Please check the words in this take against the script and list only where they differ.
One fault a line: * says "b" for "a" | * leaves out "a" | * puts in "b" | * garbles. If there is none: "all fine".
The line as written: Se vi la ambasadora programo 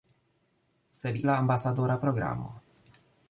all fine